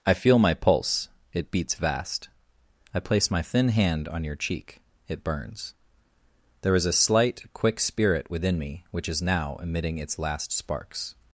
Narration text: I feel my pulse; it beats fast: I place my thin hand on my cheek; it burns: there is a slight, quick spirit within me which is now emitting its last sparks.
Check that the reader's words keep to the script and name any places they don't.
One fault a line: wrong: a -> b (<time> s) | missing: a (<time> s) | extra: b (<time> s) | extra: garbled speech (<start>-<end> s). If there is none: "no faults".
wrong: fast -> vast (1.8 s)
wrong: my -> your (4.2 s)